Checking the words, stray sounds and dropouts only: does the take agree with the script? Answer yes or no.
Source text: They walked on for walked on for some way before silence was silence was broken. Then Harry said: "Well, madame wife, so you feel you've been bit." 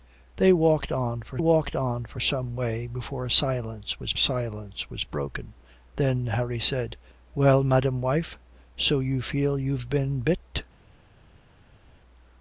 yes